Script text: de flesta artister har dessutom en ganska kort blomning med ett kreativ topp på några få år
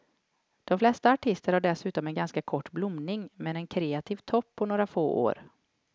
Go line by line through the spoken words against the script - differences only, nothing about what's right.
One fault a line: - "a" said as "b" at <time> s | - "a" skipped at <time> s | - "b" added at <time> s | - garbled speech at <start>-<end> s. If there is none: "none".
- "ett" said as "en" at 3.6 s